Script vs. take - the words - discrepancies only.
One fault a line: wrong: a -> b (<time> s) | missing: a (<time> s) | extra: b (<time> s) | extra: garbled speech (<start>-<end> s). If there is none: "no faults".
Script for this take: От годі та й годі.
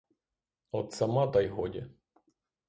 wrong: годі -> сама (0.9 s)